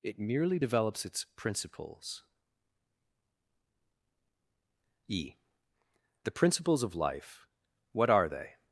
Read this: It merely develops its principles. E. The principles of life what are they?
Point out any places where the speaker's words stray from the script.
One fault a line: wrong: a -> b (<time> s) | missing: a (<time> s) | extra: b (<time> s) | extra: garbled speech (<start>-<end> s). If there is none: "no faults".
no faults